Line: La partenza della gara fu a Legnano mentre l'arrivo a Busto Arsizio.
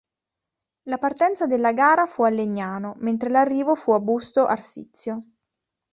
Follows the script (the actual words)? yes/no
no